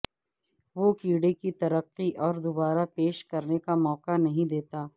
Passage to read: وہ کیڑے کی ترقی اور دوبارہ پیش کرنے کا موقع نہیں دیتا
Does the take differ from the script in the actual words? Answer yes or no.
no